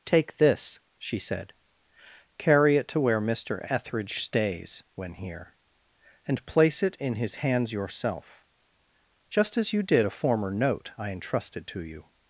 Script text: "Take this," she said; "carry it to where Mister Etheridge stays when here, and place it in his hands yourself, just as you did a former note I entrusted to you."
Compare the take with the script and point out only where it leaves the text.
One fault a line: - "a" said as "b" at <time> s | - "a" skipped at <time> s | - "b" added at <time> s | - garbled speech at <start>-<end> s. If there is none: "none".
none